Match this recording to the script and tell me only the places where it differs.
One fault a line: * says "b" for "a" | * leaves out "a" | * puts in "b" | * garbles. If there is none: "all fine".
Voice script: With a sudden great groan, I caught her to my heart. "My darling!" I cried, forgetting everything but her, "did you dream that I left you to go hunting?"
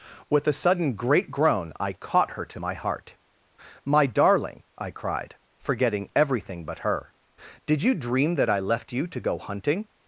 all fine